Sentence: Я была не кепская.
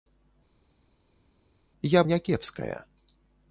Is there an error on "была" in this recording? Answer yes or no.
yes